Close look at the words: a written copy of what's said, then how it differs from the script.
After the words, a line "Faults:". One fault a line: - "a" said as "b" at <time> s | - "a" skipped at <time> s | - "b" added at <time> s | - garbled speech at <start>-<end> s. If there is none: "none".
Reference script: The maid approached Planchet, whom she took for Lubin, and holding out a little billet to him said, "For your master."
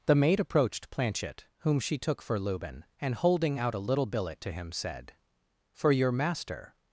The maid approached Planchet, whom she took for Lubin, and holding out a little billet to him said, "For your master."
Faults:
none